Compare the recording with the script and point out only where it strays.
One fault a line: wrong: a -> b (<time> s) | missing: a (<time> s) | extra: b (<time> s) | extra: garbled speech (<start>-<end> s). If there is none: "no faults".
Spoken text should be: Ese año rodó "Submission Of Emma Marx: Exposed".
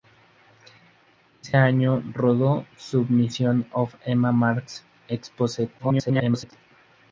extra: garbled speech (5.8-6.5 s)